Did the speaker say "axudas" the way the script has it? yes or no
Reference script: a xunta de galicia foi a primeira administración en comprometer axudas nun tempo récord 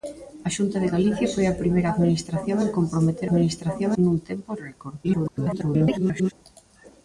no